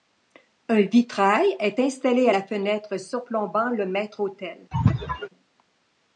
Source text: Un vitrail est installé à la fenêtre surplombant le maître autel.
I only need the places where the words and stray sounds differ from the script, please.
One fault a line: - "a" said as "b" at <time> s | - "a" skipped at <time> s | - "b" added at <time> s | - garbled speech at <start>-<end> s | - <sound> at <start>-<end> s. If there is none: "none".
- sneeze at 4.7-5.3 s